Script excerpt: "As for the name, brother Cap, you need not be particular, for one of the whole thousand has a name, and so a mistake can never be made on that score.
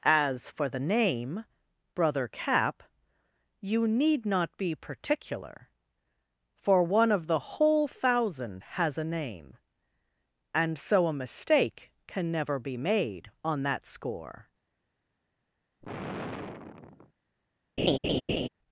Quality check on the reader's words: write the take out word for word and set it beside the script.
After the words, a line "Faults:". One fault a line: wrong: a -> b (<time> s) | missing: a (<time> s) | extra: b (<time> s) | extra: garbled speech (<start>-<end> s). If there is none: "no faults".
"As for the name, brother Cap, you need not be particular, for one of the whole thousand has a name, and so a mistake can never be made on that score.
Faults:
no faults